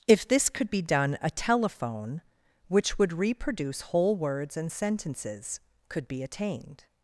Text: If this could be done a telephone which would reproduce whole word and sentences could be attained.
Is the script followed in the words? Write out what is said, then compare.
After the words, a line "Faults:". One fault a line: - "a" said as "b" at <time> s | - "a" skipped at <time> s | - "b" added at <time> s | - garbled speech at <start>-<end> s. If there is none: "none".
If this could be done a telephone which would reproduce whole words and sentences could be attained.
Faults:
- "word" said as "words" at 4.2 s